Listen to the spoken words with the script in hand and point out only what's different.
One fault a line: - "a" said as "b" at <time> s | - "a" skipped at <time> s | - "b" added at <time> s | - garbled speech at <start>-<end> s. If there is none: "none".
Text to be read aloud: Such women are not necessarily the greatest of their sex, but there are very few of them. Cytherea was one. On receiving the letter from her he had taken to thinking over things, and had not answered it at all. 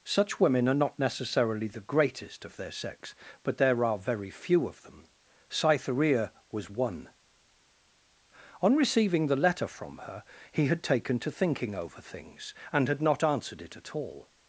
none